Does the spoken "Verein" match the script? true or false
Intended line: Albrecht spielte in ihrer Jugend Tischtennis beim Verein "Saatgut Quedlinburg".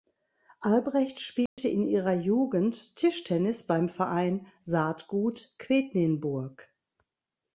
true